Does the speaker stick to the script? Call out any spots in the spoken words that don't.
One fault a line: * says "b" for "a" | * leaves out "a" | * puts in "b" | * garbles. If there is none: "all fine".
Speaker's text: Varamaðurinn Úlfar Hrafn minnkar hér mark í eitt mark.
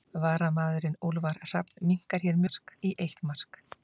all fine